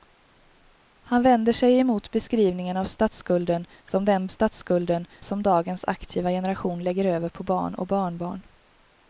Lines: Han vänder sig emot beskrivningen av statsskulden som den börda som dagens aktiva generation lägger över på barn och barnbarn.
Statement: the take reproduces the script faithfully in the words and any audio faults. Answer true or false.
false